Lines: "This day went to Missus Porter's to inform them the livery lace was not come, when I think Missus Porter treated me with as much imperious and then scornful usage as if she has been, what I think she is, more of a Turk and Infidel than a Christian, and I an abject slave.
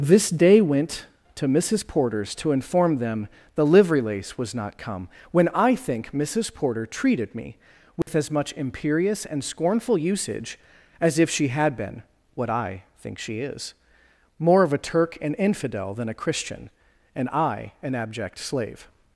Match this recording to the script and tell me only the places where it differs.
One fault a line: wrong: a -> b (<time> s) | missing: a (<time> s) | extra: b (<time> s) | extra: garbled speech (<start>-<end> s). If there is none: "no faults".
missing: then (9.4 s)
wrong: has -> had (11.5 s)